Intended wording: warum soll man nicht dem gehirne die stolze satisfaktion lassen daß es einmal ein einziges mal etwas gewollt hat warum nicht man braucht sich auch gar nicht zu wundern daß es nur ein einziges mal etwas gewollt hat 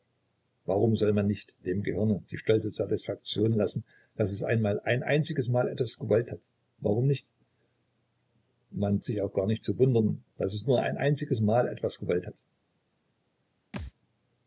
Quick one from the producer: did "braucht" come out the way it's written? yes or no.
no